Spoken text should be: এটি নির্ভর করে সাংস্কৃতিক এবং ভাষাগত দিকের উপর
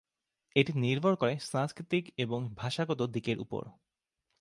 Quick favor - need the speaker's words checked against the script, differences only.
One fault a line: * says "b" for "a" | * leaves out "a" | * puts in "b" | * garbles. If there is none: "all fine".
all fine